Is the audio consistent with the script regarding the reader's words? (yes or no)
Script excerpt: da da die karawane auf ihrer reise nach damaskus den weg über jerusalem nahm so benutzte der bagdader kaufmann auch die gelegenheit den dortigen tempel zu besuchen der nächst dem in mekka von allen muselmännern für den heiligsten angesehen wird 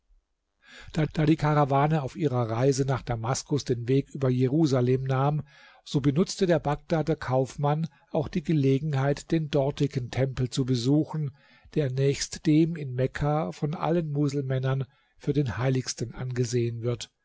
yes